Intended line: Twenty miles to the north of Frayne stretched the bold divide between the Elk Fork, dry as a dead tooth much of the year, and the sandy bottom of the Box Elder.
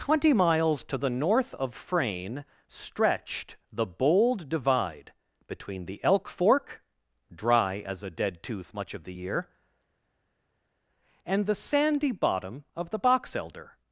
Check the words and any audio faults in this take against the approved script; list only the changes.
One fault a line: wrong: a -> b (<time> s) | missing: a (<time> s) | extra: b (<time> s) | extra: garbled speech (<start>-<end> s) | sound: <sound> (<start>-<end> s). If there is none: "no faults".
no faults